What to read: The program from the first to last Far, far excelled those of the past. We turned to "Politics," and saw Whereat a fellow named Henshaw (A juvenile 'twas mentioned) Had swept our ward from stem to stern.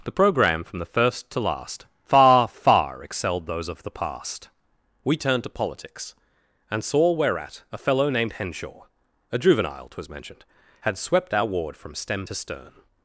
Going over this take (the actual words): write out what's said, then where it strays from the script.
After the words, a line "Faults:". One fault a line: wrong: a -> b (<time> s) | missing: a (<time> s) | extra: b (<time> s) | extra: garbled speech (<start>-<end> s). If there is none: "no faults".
The program from the first to last Far, far excelled those of the past. We turned to "Politics," and saw Whereat a fellow named Henshaw (A juvenile 'twas mentioned) Had swept our ward from stem to stern.
Faults:
no faults